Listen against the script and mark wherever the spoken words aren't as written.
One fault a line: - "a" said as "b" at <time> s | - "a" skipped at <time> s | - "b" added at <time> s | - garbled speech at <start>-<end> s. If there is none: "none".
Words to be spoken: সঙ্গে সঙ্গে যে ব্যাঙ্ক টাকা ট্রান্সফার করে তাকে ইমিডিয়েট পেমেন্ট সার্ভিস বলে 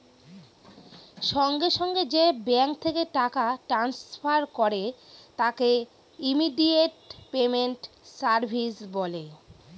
- "থেকে" added at 2.8 s